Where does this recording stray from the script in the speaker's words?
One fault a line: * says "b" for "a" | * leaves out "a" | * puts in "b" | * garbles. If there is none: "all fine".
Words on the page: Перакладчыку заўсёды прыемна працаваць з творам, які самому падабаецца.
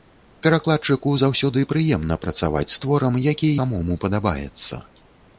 all fine